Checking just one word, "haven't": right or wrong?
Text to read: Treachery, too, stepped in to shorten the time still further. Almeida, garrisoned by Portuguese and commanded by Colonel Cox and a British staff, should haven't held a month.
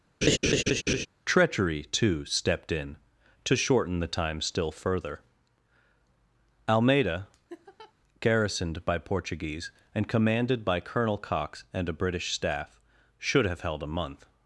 wrong